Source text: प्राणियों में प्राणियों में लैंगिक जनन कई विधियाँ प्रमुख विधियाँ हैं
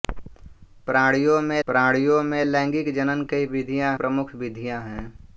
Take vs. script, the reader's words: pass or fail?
pass